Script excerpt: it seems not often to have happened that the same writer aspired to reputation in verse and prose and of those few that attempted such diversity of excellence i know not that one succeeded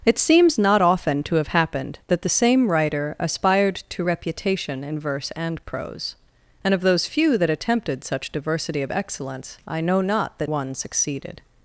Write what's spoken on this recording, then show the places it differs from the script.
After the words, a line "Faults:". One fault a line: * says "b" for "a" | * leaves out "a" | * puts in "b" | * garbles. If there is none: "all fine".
it seems not often to have happened that the same writer aspired to reputation in verse and prose and of those few that attempted such diversity of excellence i know not that one succeeded
Faults:
all fine